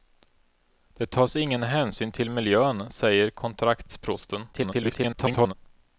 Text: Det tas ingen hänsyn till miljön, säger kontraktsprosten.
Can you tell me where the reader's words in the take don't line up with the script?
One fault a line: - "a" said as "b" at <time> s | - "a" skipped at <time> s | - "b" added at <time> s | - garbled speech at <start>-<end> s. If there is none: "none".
- garbled speech at 4.5-5.5 s